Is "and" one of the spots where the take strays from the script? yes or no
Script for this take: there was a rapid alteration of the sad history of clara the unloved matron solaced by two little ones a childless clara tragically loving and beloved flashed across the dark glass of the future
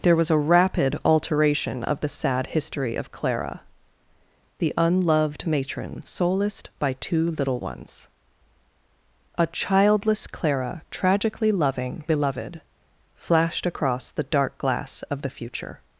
yes